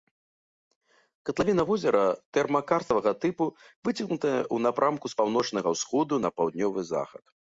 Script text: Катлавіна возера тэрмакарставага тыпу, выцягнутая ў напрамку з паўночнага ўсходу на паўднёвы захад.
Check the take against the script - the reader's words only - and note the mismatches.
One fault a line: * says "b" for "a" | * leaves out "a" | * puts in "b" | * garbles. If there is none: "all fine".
all fine